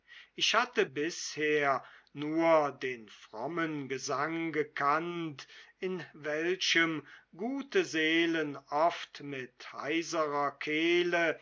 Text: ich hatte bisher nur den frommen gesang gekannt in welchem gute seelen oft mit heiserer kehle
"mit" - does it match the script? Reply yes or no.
yes